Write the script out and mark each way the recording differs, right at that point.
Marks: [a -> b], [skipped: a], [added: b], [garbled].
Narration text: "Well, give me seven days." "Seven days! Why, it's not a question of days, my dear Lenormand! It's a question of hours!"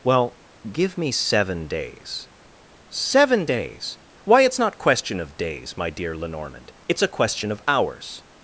"Well, give me seven days." "Seven days! Why, it's not [skipped: a] question of days, my dear Lenormand! It's a question of hours!"